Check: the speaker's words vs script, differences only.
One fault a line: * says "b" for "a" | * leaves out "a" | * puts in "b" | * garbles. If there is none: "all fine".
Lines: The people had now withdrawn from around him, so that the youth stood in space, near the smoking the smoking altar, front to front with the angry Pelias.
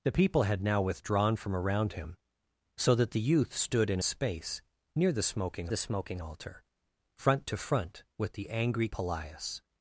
all fine